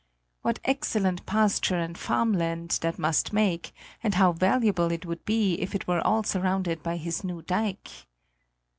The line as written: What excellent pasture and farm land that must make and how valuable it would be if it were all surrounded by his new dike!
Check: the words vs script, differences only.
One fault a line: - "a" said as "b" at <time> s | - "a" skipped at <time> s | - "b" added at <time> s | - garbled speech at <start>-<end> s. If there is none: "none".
none